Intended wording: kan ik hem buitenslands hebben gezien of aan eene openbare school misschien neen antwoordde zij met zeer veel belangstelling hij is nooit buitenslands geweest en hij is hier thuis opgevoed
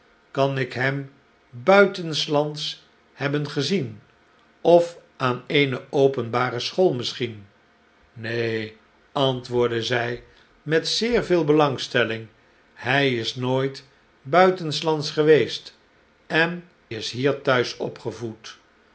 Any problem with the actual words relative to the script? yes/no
yes